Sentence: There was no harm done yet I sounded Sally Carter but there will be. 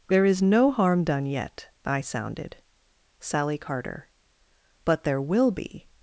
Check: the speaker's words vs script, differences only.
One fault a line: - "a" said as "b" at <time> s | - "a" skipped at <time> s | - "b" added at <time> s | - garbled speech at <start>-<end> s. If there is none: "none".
- "was" said as "is" at 0.2 s